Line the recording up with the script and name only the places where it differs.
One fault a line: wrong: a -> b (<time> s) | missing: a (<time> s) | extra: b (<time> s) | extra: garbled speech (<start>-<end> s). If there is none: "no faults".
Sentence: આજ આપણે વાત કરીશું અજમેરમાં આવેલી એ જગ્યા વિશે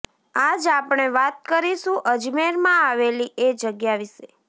no faults